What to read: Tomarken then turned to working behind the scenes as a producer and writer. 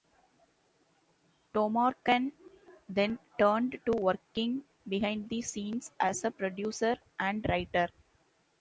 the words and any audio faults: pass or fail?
pass